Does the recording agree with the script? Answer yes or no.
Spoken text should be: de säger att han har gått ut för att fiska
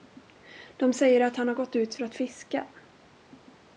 yes